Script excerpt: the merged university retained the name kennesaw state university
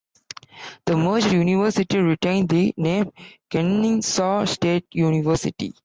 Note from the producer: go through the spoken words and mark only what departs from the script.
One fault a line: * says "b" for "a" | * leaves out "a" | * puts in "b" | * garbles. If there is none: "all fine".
all fine